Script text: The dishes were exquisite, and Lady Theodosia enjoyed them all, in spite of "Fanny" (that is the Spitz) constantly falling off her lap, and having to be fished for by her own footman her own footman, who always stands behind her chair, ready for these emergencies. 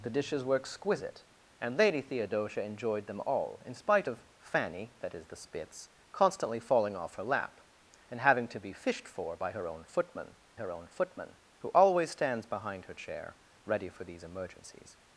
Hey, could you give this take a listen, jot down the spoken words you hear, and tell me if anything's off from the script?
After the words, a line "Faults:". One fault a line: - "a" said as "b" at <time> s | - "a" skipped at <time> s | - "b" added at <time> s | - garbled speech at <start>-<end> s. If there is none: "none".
The dishes were exquisite, and Lady Theodosia enjoyed them all, in spite of "Fanny" (that is the Spitz) constantly falling off her lap, and having to be fished for by her own footman her own footman, who always stands behind her chair, ready for these emergencies.
Faults:
none